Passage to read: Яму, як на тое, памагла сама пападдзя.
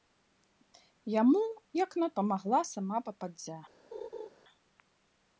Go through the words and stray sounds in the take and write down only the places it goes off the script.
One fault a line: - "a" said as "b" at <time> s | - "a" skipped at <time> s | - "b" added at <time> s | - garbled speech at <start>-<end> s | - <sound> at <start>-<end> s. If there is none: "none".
- "тое" skipped at 2.1 s
- laugh at 3.9-4.3 s